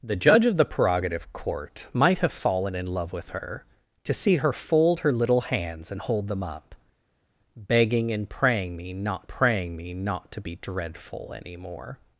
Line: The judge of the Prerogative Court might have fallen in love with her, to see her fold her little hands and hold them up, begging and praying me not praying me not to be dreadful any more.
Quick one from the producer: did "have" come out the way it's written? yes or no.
yes